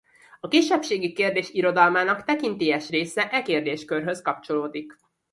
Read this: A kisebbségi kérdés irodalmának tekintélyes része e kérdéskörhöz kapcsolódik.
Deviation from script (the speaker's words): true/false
false